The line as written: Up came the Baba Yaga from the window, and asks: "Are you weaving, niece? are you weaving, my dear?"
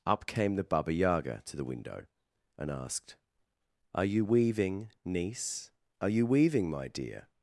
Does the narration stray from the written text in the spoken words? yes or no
yes